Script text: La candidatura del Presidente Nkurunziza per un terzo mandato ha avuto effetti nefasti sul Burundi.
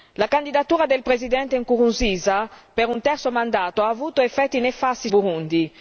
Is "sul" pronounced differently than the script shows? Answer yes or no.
yes